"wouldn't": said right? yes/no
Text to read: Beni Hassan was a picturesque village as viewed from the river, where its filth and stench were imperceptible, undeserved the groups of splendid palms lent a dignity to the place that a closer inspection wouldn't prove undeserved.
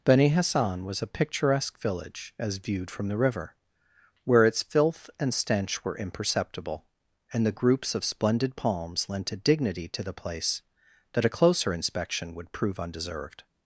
no